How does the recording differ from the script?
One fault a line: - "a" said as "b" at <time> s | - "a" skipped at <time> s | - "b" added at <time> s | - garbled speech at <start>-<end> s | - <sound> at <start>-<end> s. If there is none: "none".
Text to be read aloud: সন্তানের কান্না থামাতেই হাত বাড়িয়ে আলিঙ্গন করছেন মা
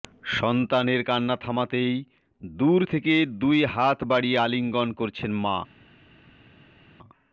- "দূর থেকে দুই" added at 2.4 s